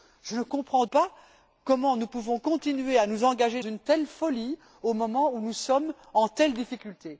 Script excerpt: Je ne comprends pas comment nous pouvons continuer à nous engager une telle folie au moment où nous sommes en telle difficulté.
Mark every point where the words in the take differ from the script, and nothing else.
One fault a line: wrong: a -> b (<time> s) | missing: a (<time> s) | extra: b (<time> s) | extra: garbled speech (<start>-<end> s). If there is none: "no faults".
no faults